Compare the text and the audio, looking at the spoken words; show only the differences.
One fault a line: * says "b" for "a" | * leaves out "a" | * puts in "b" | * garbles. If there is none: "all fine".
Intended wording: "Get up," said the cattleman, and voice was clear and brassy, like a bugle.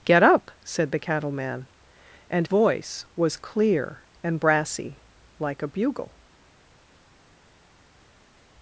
all fine